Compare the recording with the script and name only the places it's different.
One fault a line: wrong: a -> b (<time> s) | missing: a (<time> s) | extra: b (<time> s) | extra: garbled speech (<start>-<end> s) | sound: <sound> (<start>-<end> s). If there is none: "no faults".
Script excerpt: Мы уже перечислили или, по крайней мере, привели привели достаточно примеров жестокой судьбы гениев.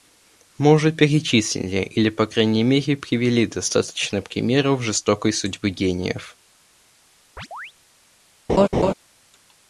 missing: привели (3.5 s)
sound: chirp (7.4-7.7 s)
sound: laugh (8.5-8.9 s)